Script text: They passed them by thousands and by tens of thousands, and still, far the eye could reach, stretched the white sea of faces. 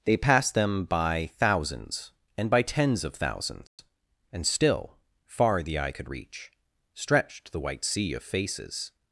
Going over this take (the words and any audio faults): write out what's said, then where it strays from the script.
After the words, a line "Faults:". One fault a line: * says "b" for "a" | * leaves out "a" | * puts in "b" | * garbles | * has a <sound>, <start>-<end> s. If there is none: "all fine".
They passed them by thousands and by tens of thousands, and still, far the eye could reach, stretched the white sea of faces.
Faults:
* has a dropout, 3.7-3.8 s